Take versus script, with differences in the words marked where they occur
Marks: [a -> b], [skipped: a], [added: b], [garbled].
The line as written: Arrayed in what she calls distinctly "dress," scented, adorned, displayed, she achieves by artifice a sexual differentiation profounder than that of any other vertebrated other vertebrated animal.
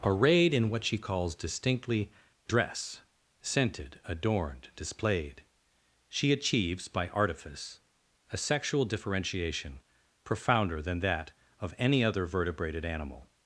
Arrayed in what she calls distinctly "dress," scented, adorned, displayed, she achieves by artifice a sexual differentiation profounder than that of any other vertebrated [skipped: other vertebrated] animal.